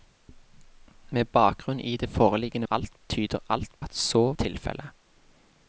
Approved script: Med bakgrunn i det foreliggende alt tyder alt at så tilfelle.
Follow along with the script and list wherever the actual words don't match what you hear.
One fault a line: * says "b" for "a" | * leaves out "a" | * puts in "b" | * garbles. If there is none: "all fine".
all fine